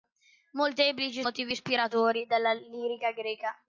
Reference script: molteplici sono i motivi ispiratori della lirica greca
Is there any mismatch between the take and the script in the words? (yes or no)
yes